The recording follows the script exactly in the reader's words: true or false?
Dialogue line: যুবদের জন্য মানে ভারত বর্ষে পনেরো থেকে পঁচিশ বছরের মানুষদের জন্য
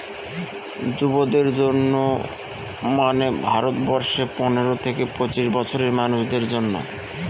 true